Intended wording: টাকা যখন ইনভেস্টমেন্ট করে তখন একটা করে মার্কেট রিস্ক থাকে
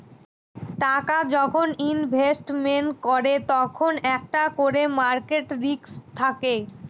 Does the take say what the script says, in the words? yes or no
yes